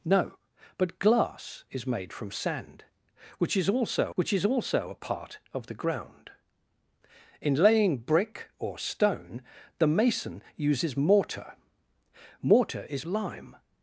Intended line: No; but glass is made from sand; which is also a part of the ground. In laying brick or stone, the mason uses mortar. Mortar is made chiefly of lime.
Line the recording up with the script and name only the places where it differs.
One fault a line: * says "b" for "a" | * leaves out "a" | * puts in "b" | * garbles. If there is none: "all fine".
* puts in "which is also"
* leaves out "made chiefly of"